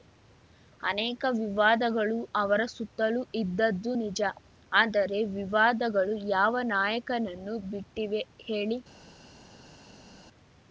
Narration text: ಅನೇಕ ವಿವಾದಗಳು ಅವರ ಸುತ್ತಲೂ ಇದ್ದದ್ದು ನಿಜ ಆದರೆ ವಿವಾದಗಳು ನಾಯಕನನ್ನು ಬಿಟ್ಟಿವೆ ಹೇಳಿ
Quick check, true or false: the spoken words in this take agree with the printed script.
false